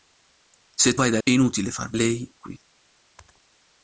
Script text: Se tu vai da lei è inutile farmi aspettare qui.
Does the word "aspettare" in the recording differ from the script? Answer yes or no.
yes